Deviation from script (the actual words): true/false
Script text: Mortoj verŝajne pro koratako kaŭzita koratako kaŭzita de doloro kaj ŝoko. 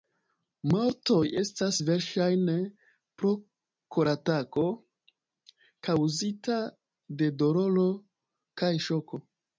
true